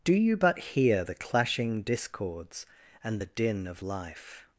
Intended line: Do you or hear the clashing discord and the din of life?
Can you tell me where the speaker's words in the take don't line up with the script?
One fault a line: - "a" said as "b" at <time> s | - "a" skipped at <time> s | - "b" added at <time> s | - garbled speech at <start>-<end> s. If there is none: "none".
- "or" said as "but" at 0.3 s
- "discord" said as "discords" at 1.8 s